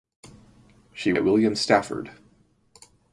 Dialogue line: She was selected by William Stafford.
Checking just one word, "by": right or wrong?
wrong